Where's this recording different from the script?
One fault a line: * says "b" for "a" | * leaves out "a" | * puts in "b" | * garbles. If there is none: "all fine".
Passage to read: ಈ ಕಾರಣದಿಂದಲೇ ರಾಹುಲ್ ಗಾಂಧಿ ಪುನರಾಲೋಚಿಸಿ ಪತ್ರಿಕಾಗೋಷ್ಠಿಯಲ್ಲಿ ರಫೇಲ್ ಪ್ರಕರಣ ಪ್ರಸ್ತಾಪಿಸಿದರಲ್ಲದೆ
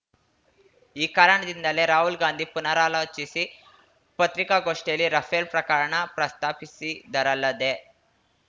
all fine